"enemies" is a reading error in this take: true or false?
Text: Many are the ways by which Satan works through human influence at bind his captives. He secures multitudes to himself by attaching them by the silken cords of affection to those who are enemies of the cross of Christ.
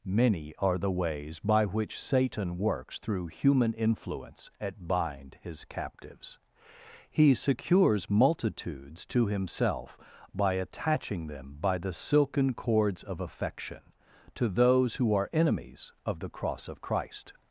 false